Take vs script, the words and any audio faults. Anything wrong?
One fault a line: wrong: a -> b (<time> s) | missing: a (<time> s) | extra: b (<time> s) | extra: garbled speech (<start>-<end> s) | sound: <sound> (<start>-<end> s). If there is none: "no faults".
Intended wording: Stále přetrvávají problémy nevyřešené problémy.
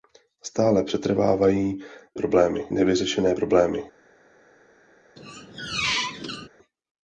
sound: squeak (5.2-6.5 s)